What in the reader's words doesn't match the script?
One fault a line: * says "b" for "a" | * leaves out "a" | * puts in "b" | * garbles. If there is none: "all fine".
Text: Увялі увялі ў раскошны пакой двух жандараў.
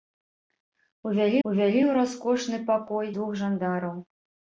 all fine